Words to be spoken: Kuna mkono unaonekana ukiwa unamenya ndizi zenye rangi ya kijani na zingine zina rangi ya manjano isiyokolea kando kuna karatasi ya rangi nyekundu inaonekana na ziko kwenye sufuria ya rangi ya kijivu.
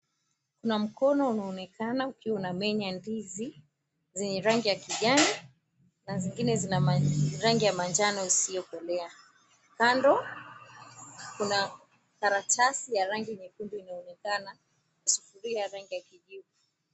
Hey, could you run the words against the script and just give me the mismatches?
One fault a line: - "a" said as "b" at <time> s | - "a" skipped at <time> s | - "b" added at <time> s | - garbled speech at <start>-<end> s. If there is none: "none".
- "na ziko kwenye" skipped at 14.6 s